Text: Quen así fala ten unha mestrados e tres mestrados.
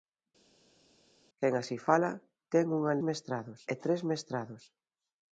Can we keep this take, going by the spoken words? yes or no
yes